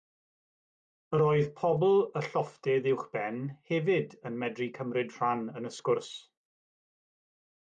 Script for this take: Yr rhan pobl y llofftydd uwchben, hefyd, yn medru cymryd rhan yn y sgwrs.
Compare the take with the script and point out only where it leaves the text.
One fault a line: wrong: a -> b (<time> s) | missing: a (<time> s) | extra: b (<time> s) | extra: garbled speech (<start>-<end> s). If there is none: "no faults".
wrong: rhan -> oedd (1.2 s)